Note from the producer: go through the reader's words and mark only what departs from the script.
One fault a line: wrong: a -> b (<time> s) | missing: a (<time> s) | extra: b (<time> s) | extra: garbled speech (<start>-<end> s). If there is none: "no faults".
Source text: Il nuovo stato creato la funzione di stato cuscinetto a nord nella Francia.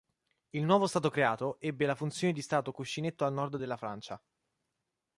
extra: ebbe (1.6 s)
wrong: nella -> della (3.5 s)